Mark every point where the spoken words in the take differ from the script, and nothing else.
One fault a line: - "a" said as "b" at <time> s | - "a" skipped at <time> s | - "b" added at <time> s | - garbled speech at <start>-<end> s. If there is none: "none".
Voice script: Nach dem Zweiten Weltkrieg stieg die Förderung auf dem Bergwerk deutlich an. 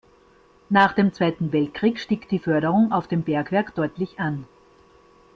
none